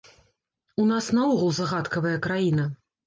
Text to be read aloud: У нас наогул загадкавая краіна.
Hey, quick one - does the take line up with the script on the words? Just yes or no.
yes